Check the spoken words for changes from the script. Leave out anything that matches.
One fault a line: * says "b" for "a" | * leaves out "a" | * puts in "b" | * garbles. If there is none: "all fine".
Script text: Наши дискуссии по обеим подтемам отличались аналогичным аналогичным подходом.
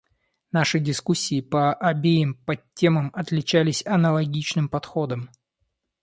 * leaves out "аналогичным"